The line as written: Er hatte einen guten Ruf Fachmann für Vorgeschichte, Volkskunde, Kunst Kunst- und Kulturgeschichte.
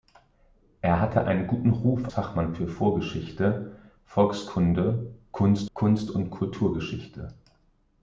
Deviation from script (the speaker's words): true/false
false